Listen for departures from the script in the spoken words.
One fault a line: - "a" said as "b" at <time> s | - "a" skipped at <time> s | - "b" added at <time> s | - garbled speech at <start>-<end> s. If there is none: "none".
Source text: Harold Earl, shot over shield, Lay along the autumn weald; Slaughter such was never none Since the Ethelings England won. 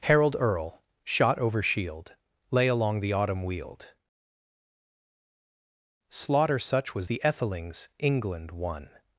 - "never none Since" skipped at 7.1 s